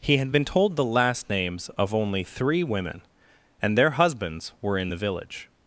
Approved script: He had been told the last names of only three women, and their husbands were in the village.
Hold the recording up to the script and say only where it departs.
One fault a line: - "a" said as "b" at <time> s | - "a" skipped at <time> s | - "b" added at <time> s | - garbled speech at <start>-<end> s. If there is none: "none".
none